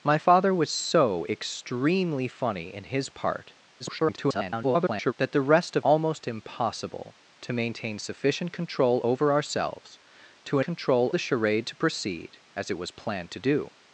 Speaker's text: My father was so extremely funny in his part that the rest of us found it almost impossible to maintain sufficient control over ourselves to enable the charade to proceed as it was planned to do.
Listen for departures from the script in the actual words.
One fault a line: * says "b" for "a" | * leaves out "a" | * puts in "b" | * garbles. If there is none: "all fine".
* garbles
* leaves out "us found it"
* says "control" for "enable"